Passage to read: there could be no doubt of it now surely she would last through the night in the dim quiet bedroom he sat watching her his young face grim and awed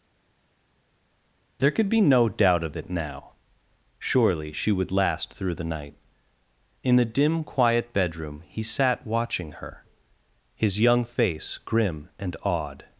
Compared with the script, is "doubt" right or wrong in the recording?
right